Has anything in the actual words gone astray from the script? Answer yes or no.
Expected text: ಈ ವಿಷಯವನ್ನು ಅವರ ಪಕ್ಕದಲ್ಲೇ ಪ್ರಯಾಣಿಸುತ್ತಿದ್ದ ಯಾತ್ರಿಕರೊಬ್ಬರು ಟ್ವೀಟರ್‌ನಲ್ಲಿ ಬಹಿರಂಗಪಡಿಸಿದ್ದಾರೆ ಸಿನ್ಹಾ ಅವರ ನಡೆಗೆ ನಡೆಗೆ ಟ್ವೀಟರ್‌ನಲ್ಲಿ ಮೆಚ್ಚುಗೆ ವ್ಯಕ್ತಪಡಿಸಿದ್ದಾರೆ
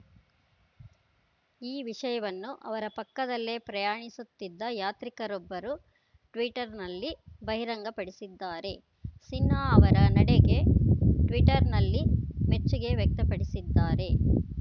yes